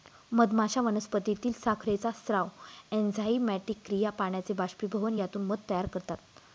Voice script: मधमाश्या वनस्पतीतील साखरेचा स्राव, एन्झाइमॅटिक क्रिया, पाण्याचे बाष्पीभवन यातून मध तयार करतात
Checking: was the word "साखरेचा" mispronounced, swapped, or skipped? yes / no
no